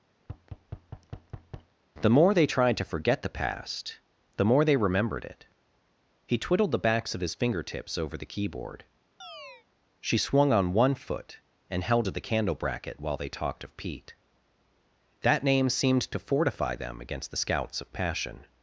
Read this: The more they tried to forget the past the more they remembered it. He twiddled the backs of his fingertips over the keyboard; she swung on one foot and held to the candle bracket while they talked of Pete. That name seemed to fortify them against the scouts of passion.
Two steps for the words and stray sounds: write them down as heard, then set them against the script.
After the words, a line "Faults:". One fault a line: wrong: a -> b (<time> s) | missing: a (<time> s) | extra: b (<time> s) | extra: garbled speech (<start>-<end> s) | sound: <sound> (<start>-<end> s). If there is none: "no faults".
The more they tried to forget the past the more they remembered it. He twiddled the backs of his fingertips over the keyboard; she swung on one foot and held to the candle bracket while they talked of Pete. That name seemed to fortify them against the scouts of passion.
Faults:
sound: thud (0.2-1.7 s)
sound: chirp (9.2-9.7 s)